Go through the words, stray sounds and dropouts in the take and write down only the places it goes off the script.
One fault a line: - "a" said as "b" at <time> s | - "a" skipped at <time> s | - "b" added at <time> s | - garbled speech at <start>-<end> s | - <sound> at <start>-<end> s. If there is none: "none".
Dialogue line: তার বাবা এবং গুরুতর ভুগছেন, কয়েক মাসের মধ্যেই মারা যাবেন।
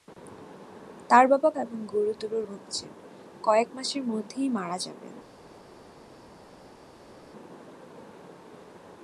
none